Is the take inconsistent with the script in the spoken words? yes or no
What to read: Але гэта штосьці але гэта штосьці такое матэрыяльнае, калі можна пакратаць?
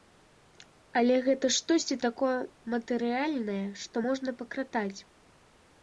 yes